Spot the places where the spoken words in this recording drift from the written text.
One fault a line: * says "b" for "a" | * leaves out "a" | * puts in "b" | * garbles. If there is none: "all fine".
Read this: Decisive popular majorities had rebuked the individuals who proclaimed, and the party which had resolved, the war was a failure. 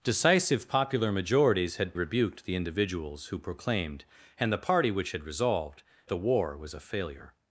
all fine